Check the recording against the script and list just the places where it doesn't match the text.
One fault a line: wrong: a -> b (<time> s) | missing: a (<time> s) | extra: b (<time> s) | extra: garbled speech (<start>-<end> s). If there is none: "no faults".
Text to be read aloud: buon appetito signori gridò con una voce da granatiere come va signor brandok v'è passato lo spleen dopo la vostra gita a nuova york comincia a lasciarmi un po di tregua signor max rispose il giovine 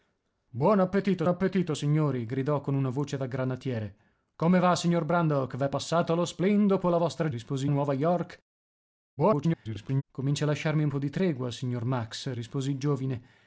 extra: appetito (1.3 s)
wrong: gita -> rispose (7.3 s)
extra: garbled speech (9.2-10.0 s)